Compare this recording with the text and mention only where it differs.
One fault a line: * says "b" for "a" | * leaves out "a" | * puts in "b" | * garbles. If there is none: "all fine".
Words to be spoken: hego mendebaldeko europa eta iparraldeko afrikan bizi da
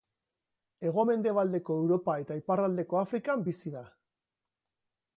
all fine